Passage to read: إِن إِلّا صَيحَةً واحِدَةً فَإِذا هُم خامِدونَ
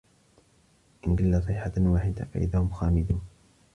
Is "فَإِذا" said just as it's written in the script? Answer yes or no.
yes